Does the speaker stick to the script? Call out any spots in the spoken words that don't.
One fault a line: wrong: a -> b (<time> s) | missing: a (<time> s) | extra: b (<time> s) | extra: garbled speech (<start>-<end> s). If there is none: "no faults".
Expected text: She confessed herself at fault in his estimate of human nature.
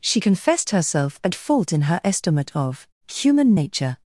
wrong: his -> her (1.8 s)